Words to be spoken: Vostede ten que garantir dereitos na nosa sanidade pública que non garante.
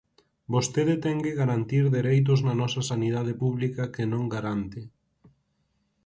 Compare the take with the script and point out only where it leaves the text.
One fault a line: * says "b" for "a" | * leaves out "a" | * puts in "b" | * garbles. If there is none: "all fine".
all fine